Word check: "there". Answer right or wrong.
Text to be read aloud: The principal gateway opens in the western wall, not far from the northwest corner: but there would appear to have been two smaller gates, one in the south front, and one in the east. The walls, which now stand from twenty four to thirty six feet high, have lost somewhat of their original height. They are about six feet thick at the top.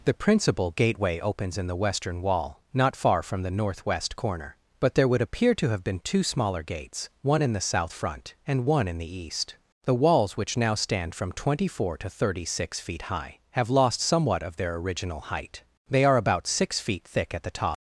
right